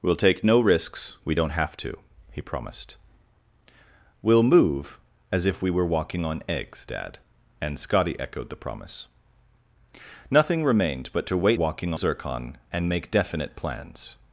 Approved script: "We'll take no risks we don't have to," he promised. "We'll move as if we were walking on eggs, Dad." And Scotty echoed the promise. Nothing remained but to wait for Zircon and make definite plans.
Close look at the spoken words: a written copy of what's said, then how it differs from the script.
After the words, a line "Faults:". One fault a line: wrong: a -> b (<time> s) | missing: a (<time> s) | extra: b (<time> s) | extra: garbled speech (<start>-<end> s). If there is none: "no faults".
"We'll take no risks we don't have to," he promised. "We'll move as if we were walking on eggs, Dad." And Scotty echoed the promise. Nothing remained but to wait walking Zircon and make definite plans.
Faults:
wrong: for -> walking (11.5 s)